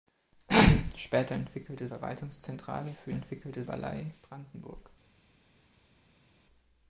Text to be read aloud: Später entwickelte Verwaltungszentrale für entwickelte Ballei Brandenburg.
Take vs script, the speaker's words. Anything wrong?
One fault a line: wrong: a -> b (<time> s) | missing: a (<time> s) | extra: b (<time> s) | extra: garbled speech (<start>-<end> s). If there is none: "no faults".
no faults